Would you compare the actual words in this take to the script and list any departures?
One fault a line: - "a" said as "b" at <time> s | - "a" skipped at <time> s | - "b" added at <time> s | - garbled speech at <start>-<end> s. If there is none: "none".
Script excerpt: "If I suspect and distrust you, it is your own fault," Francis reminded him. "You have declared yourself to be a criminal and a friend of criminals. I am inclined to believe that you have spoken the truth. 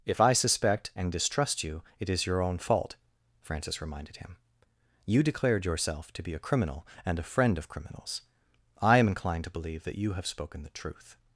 - "have" skipped at 5.2 s